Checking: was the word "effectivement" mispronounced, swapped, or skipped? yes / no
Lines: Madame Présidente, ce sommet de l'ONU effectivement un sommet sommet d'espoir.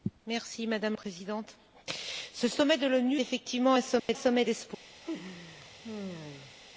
no